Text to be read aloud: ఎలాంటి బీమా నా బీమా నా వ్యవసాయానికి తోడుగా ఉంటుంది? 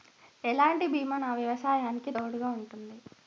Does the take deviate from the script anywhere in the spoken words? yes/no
yes